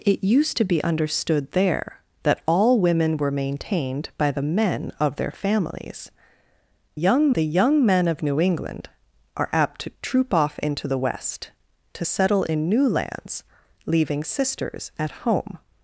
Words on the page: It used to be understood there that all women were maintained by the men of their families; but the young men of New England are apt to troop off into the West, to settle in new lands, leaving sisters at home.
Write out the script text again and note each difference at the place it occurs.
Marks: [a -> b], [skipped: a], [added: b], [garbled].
It used to be understood there that all women were maintained by the men of their families; [but -> young] the young men of New England are apt to troop off into the West, to settle in new lands, leaving sisters at home.